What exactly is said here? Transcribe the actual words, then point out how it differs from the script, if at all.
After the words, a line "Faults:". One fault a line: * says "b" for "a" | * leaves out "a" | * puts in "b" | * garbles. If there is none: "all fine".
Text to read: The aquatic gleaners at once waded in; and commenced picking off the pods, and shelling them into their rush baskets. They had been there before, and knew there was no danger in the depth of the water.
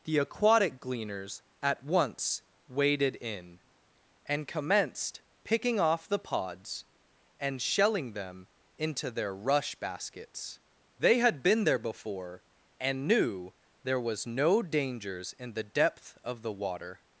The aquatic gleaners at once waded in; and commenced picking off the pods, and shelling them into their rush baskets. They had been there before, and knew there was no dangers in the depth of the water.
Faults:
* says "dangers" for "danger"